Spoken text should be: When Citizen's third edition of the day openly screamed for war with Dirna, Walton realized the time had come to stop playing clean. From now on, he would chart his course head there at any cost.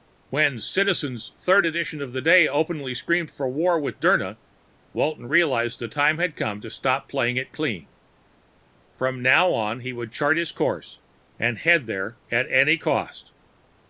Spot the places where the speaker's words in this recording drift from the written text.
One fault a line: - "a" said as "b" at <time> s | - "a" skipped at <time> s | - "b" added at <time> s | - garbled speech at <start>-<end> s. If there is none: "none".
- "it" added at 7.4 s
- "and" added at 11.4 s